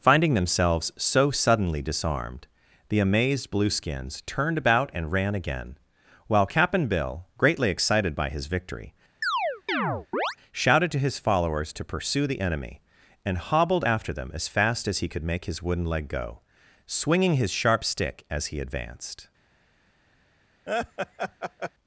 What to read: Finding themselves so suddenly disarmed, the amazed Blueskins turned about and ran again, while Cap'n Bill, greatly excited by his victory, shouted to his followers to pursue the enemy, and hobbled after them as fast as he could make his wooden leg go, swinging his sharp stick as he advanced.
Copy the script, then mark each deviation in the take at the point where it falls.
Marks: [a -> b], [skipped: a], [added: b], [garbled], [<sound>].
Finding themselves so suddenly disarmed, the amazed Blueskins turned about and ran again, while Cap'n Bill, greatly excited by his victory, [chirp] shouted to his followers to pursue the enemy, and hobbled after them as fast as he could make his wooden leg go, swinging his sharp stick as he advanced. [laugh]